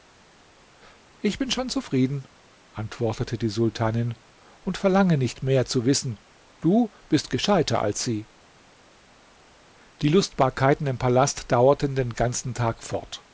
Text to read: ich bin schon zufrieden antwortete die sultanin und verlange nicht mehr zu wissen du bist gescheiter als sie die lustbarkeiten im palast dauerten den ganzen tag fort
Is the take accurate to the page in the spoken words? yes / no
yes